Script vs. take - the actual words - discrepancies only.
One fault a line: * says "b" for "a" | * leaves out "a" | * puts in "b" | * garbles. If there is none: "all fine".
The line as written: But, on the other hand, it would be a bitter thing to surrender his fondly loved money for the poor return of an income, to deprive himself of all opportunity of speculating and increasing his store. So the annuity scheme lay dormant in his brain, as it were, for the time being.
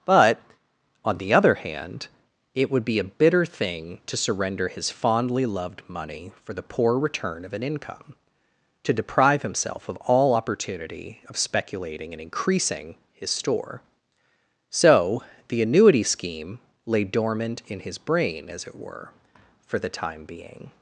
all fine